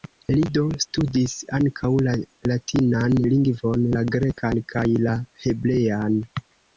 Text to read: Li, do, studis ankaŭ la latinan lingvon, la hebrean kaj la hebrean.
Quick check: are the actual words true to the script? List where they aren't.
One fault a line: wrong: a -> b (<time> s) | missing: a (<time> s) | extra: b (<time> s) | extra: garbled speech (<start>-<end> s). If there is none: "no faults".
wrong: hebrean -> grekan (4.2 s)